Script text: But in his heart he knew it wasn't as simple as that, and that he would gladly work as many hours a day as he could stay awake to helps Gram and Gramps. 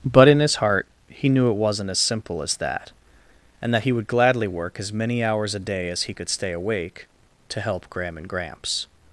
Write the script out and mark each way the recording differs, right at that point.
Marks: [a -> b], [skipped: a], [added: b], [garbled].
But in his heart he knew it wasn't as simple as that, and that he would gladly work as many hours a day as he could stay awake to [helps -> help] Gram and Gramps.